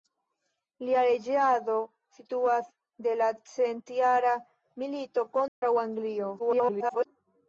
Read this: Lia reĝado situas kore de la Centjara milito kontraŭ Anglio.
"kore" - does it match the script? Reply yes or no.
no